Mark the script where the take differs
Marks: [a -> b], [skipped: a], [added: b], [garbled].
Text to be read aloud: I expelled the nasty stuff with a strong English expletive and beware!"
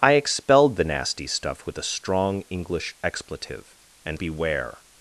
I expelled the nasty stuff with a strong English expletive and beware!"